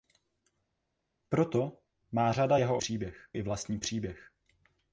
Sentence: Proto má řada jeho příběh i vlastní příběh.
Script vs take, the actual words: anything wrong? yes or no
no